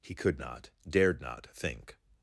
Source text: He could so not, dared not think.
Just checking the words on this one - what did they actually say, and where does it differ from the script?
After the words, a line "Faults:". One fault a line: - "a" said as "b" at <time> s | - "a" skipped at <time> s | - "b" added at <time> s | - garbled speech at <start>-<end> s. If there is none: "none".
He could not, dared not think.
Faults:
- "so" skipped at 0.4 s